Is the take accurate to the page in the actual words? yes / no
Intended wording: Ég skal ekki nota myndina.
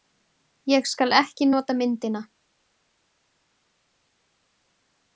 yes